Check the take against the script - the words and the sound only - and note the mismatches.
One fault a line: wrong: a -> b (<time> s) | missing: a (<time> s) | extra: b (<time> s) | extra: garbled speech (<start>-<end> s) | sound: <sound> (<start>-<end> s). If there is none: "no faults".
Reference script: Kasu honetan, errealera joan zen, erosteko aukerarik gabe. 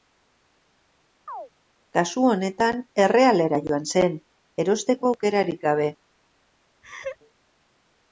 sound: chirp (1.3-1.5 s)
sound: laugh (6.8-7.2 s)